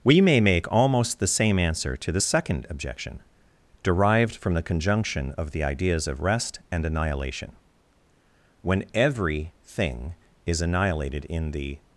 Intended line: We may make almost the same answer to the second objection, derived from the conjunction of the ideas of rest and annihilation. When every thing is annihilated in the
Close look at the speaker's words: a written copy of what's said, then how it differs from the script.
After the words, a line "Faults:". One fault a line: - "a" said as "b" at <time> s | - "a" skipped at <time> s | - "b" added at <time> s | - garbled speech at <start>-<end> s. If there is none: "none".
We may make almost the same answer to the second objection, derived from the conjunction of the ideas of rest and annihilation. When every thing is annihilated in the
Faults:
none